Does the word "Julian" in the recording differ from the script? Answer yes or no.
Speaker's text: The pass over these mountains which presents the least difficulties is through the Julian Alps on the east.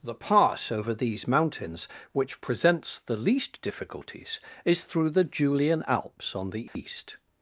no